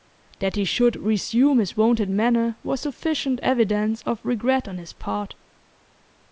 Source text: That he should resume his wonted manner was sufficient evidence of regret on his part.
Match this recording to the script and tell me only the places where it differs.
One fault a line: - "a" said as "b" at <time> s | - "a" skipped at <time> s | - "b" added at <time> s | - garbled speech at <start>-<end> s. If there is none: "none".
none